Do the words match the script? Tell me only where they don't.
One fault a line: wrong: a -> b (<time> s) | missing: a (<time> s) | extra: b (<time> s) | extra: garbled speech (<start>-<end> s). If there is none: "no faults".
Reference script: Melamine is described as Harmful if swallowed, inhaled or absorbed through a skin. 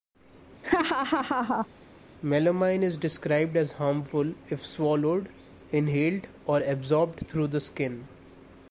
wrong: a -> the (7.5 s)